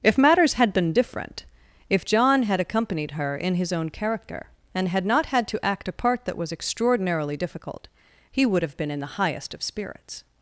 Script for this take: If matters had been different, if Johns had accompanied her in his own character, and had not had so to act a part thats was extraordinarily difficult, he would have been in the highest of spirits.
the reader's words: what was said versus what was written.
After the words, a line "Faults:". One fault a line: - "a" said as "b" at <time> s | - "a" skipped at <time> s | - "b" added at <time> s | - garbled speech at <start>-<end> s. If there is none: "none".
If matters had been different, if John had accompanied her in his own character, and had not had to act a part that was extraordinarily difficult, he would have been in the highest of spirits.
Faults:
- "Johns" said as "John" at 2.1 s
- "so" skipped at 5.5 s
- "thats" said as "that" at 6.2 s